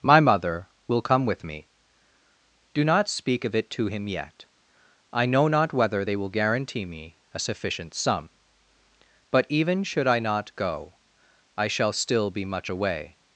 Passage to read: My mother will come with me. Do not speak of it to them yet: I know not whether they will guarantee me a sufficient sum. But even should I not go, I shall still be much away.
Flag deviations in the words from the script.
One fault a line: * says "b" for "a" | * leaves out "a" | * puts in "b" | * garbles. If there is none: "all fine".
* says "him" for "them"